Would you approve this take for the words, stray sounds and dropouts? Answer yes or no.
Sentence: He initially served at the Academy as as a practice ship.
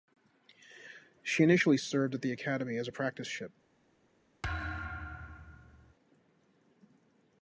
no